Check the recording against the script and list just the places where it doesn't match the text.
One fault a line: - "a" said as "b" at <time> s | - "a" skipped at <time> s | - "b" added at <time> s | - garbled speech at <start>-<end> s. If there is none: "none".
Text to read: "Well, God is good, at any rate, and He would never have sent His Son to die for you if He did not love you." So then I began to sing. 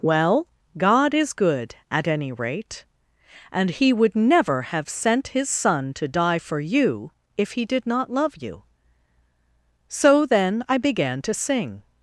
none